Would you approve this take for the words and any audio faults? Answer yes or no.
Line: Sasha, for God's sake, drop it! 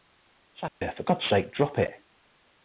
no